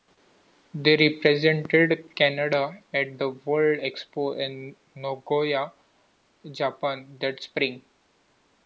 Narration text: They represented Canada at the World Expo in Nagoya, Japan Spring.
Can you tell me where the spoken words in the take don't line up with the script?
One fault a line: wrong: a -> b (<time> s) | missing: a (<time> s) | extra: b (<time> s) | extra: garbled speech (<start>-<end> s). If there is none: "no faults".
extra: that (7.2 s)